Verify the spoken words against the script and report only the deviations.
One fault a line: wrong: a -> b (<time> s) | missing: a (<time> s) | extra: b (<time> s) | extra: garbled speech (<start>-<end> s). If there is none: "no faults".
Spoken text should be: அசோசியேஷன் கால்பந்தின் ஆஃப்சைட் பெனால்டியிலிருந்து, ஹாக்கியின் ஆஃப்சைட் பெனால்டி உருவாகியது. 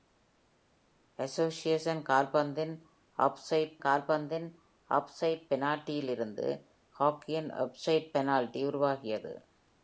extra: கால்பந்தின் ஆஃப்சைட் (3.8 s)